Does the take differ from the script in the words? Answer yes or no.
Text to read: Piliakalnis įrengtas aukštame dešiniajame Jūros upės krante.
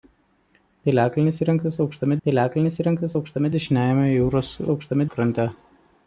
yes